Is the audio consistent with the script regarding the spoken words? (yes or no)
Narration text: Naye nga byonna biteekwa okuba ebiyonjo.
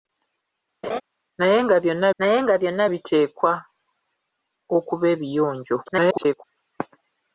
no